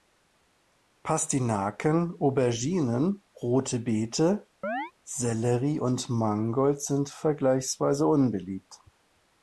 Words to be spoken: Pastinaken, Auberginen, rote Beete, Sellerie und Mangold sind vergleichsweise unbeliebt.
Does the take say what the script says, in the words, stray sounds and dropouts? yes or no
no